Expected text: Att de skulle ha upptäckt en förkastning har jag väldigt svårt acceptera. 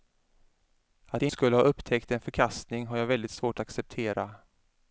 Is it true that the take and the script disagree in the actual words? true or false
false